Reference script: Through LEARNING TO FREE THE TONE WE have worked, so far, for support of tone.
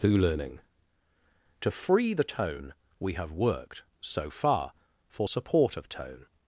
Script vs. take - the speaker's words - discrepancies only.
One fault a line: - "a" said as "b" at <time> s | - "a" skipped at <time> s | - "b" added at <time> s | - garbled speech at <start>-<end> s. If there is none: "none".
none